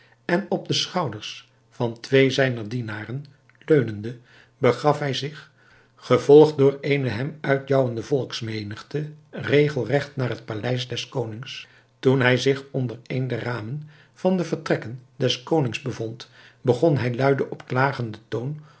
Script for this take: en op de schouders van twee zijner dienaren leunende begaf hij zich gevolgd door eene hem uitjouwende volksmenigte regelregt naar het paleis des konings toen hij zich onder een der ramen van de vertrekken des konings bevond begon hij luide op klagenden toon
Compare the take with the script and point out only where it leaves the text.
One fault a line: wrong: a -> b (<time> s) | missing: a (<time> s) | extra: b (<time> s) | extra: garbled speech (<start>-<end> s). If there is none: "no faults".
no faults